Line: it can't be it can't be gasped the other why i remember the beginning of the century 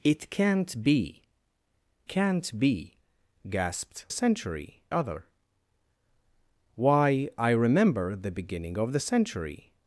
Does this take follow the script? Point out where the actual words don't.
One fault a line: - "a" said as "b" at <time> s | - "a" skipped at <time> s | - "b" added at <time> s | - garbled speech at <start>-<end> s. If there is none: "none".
- "it" skipped at 1.2 s
- "the" said as "century" at 4.1 s